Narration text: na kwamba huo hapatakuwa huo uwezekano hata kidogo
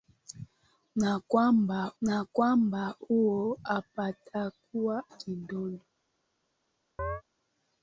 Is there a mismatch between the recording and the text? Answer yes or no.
yes